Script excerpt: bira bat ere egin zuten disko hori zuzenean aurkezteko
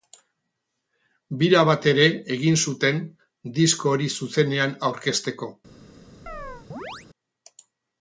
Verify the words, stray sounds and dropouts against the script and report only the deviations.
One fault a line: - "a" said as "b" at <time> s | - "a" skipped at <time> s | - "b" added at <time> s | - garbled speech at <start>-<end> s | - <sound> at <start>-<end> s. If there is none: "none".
- chirp at 6.3-7.1 s